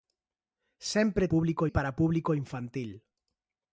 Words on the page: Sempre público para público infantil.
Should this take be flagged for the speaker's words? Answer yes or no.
no